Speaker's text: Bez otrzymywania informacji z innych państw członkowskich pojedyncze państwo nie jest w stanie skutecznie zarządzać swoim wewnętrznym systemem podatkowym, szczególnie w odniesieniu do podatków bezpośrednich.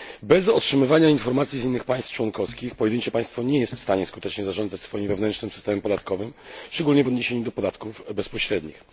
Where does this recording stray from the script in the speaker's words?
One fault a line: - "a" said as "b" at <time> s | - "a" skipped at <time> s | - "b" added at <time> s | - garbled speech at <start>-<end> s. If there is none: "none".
none